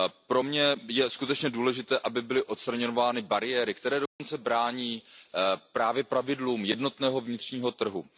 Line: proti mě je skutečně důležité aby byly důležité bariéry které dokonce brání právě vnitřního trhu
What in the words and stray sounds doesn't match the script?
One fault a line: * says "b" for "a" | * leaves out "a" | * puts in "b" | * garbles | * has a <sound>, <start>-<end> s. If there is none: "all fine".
* says "pro" for "proti"
* says "odstraňovány" for "důležité"
* has a dropout, 4.1-4.2 s
* puts in "pravidlům jednotného"